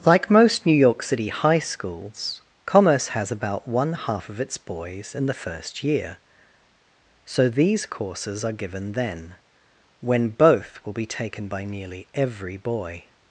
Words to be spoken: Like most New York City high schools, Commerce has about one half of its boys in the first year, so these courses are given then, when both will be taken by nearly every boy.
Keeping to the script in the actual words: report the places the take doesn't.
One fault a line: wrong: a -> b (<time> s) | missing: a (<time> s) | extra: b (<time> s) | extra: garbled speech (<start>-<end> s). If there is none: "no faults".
no faults